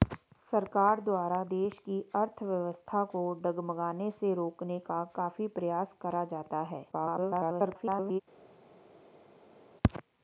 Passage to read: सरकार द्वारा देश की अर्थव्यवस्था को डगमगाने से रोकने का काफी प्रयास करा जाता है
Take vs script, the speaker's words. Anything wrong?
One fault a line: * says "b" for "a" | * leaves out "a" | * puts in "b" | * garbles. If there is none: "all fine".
* garbles